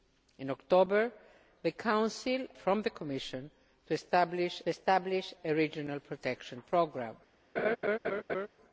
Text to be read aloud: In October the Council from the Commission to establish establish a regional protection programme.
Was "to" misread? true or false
false